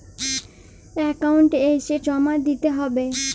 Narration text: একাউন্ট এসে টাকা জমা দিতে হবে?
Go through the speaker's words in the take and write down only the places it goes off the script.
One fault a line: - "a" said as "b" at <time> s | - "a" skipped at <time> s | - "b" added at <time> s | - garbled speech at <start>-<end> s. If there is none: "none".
- "টাকা" skipped at 1.9 s